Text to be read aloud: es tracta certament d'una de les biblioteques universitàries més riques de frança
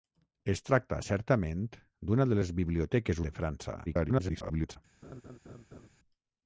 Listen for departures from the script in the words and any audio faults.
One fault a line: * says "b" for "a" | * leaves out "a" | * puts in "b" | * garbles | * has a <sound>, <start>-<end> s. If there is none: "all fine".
* leaves out "universitàries més riques"
* garbles
* has a laugh, 5.0-5.9 s